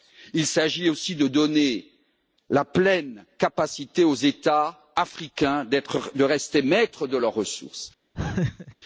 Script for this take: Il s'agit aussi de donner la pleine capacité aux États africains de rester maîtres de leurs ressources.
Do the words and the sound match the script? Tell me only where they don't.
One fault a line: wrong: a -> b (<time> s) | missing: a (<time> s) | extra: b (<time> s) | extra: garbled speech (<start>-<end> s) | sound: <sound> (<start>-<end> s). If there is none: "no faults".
sound: laugh (8.1-8.7 s)